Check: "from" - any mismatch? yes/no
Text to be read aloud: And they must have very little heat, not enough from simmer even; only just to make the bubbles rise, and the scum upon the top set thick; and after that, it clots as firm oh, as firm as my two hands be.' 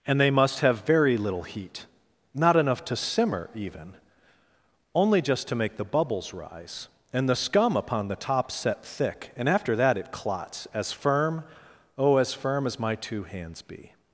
yes